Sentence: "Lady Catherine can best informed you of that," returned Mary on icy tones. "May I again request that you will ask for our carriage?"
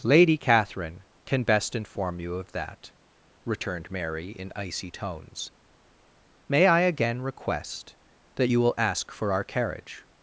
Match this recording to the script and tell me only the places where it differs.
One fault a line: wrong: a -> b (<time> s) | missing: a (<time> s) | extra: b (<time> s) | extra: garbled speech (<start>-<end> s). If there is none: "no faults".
wrong: informed -> inform (1.8 s)
wrong: on -> in (4.3 s)